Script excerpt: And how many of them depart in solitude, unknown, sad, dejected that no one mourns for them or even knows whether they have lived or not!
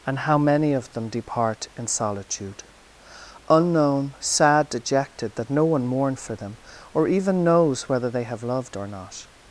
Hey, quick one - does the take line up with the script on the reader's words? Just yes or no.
no